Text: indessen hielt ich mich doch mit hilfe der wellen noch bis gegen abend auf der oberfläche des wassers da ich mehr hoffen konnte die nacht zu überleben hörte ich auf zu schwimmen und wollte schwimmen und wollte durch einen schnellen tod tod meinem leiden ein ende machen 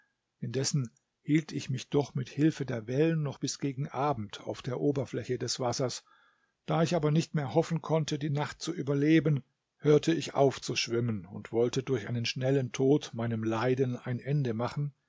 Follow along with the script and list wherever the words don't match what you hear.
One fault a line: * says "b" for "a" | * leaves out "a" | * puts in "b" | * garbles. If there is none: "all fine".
* puts in "aber nicht"
* leaves out "schwimmen und wollte"
* leaves out "tod"